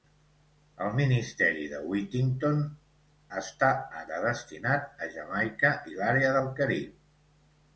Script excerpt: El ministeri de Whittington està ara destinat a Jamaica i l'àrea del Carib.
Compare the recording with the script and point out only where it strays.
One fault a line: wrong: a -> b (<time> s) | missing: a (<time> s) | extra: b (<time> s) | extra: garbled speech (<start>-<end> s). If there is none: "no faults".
no faults